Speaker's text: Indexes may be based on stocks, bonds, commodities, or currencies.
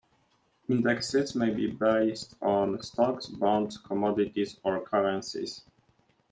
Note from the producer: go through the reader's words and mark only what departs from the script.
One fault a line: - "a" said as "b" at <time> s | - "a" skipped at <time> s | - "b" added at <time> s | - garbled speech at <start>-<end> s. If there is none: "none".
none